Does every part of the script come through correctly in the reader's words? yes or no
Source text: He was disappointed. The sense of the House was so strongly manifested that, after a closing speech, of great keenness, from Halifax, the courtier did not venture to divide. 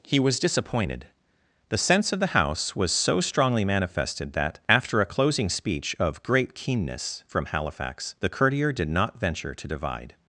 yes